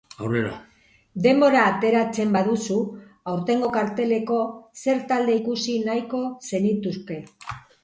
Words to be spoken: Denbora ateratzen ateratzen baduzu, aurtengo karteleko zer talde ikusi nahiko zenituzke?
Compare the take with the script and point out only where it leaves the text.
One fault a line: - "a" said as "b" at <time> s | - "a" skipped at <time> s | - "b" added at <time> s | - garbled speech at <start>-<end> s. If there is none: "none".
- "ateratzen" skipped at 2.3 s